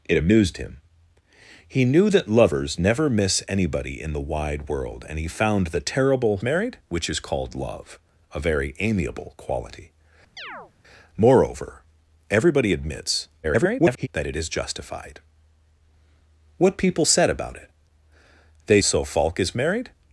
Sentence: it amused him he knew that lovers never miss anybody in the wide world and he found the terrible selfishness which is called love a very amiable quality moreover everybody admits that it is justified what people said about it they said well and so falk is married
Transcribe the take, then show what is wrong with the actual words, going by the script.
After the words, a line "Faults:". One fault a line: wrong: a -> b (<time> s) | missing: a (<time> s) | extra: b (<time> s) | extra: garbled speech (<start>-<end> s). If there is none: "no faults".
it amused him he knew that lovers never miss anybody in the wide world and he found the terrible married which is called love a very amiable quality moreover everybody admits [garbled] that it is justified what people said about it they so falk is married
Faults:
wrong: selfishness -> married (6.4 s)
extra: garbled speech (13.4-14.1 s)
missing: said well and (18.8 s)